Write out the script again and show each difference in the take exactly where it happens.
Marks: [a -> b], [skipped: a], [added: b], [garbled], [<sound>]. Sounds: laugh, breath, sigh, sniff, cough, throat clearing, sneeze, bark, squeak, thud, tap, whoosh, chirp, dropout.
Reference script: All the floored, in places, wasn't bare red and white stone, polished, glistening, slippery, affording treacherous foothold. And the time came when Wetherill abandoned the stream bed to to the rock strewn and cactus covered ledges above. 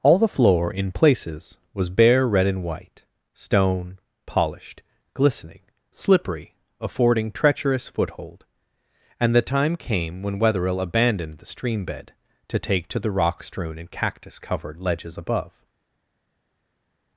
All the [floored, -> floor] in places, [wasn't -> was] bare red and white stone, polished, glistening, slippery, affording treacherous foothold. And the time came when Wetherill abandoned the stream bed to [added: take] to the rock strewn and cactus covered ledges above.